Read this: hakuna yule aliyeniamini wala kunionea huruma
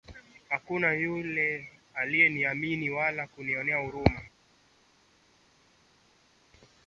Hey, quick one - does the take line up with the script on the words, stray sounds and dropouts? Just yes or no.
yes